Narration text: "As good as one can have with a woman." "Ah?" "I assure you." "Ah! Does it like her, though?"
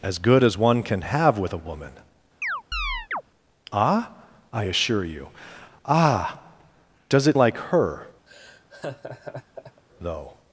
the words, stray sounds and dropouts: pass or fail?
fail